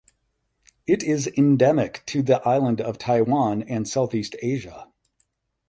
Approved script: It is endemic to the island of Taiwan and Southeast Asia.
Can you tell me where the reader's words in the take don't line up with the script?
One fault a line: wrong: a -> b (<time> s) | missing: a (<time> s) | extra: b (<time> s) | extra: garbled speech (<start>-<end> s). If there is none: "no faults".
no faults